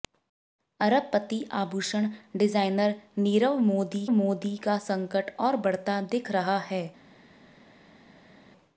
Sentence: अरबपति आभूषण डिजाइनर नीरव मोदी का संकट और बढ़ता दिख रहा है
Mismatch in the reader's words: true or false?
true